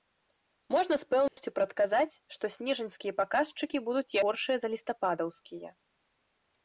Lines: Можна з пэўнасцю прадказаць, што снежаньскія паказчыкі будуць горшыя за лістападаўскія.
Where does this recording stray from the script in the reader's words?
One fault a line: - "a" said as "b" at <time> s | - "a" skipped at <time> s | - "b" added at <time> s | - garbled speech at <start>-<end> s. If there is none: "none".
none